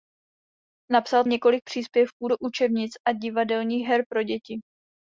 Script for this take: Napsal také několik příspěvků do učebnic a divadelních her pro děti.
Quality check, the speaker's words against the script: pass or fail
fail